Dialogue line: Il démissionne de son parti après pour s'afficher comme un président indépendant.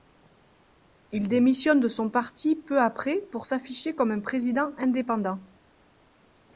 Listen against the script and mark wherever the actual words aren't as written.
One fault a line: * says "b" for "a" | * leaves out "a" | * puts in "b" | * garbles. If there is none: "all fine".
* puts in "peu"